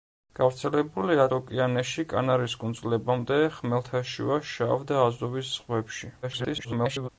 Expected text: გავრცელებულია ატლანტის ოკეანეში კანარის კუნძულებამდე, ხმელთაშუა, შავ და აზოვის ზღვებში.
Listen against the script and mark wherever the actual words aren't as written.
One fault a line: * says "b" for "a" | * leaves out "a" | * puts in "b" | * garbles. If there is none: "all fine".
* leaves out "ატლანტის"
* garbles